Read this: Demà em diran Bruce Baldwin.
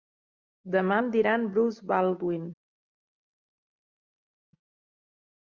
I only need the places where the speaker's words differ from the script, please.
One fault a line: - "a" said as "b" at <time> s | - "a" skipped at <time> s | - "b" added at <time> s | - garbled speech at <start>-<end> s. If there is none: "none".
none